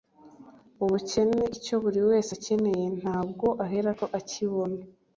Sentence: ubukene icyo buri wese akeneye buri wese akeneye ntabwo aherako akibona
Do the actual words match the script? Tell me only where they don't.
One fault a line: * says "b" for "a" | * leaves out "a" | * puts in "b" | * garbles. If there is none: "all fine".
* leaves out "buri wese akeneye"